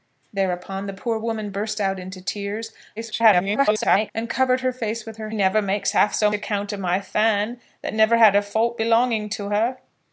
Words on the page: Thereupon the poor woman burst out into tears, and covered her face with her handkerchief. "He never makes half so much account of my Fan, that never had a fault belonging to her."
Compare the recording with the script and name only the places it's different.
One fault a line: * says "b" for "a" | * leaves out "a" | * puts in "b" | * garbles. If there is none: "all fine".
* garbles
* leaves out "handkerchief He"
* leaves out "much"